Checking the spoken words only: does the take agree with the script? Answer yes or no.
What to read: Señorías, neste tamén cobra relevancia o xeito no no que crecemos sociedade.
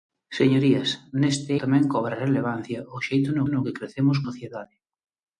yes